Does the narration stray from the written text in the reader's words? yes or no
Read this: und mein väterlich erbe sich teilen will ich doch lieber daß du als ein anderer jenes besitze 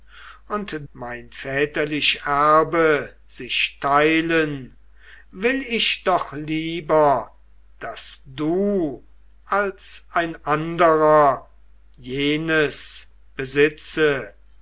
no